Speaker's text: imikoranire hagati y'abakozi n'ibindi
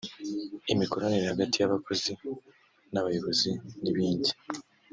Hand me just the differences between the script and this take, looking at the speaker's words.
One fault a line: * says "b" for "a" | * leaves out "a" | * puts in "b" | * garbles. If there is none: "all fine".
* puts in "n'abayobozi"